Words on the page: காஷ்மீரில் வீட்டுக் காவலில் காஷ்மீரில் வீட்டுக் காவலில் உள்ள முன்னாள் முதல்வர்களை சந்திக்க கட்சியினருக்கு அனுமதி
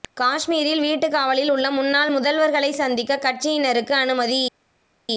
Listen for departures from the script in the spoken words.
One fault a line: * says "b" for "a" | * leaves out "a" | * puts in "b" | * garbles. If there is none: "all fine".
* leaves out "காஷ்மீரில் வீட்டுக் காவலில்"